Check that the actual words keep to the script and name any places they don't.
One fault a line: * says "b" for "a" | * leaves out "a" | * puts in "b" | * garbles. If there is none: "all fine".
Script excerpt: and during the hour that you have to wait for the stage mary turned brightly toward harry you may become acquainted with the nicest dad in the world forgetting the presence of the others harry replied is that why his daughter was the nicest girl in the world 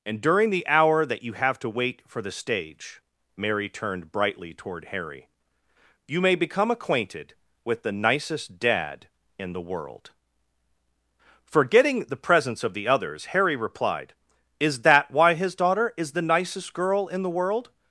* says "is" for "was"